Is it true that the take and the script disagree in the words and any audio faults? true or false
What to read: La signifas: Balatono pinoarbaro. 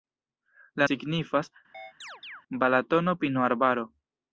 true